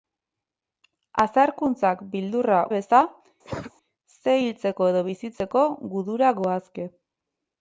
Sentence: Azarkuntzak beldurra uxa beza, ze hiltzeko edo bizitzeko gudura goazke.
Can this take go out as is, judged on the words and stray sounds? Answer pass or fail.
fail